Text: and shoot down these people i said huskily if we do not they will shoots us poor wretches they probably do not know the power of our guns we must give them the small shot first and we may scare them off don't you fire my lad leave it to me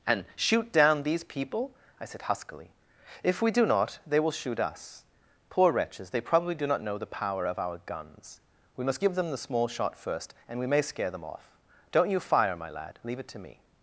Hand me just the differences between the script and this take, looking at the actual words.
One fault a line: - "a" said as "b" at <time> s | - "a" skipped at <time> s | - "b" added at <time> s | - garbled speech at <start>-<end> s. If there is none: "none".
- "shoots" said as "shoot" at 4.3 s